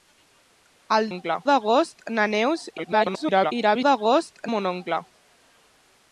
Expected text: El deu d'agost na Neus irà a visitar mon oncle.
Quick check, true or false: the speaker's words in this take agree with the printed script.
false